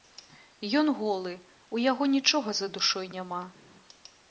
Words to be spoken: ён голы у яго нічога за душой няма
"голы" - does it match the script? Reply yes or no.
yes